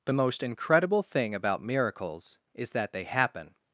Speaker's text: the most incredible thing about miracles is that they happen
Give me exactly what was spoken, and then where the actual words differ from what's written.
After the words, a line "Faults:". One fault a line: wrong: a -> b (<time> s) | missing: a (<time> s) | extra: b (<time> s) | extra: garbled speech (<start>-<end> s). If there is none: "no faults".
the most incredible thing about miracles is that they happen
Faults:
no faults